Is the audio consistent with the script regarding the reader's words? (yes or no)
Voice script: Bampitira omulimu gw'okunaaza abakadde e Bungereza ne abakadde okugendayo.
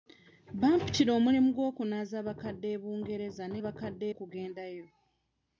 yes